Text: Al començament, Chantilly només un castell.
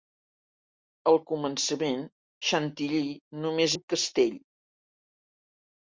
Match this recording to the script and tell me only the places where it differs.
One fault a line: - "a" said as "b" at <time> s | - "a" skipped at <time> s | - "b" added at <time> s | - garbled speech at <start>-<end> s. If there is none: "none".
none